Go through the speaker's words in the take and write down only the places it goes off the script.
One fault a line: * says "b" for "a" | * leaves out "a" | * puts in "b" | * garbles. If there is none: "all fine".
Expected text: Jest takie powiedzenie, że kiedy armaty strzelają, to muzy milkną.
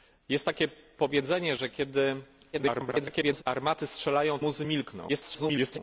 * garbles
* leaves out "to"
* garbles